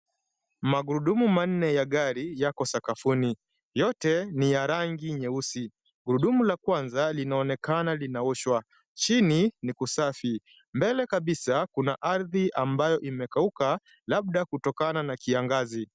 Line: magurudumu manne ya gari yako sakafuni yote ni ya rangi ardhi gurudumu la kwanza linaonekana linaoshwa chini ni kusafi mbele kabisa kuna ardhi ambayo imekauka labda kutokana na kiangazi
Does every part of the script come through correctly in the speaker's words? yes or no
no